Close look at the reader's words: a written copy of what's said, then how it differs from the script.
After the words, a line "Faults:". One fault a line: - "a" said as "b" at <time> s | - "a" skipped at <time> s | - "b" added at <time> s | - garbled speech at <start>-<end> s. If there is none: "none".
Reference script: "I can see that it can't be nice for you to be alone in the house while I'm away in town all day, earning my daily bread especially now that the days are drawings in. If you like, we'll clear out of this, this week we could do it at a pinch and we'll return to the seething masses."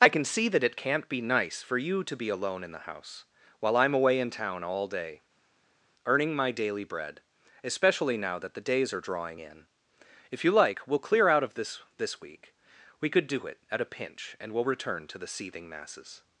"I can see that it can't be nice for you to be alone in the house while I'm away in town all day, earning my daily bread especially now that the days are drawing in. If you like, we'll clear out of this, this week we could do it at a pinch and we'll return to the seething masses."
Faults:
- "drawings" said as "drawing" at 9.0 s